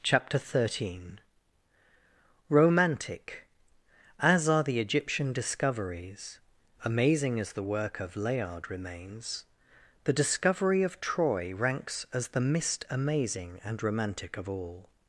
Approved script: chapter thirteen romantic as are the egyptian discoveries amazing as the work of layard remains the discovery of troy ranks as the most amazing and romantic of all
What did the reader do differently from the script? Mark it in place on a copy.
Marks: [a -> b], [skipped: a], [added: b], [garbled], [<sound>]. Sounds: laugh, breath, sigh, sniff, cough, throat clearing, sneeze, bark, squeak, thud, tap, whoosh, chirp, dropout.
chapter thirteen romantic as are the egyptian discoveries amazing as the work of layard remains the discovery of troy ranks as the [most -> mist] amazing and romantic of all